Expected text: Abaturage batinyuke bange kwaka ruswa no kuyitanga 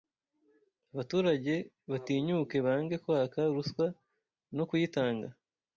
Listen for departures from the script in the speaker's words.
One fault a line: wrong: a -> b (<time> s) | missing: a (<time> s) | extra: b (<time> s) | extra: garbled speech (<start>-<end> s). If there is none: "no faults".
no faults